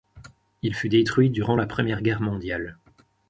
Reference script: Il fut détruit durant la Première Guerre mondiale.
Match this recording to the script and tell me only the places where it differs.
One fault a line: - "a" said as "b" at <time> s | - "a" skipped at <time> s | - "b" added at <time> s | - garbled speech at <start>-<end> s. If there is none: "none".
none